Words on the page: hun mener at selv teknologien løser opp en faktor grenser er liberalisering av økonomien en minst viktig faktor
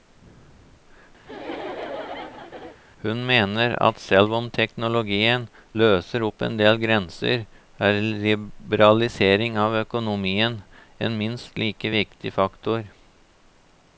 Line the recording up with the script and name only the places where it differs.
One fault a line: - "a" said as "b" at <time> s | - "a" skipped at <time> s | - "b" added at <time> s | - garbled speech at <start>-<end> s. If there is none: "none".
- "om" added at 4.4 s
- "faktor" said as "del" at 6.6 s
- "like" added at 11.7 s